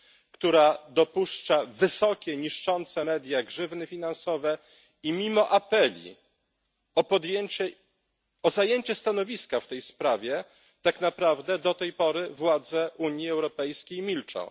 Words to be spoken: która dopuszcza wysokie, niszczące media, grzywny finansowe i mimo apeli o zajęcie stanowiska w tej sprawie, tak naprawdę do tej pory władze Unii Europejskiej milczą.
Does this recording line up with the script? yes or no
yes